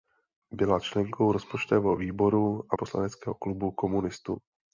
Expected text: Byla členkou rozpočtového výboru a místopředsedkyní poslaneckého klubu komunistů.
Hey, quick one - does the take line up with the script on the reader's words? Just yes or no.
no